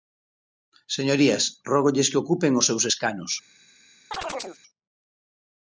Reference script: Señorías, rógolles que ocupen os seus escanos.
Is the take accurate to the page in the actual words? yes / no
yes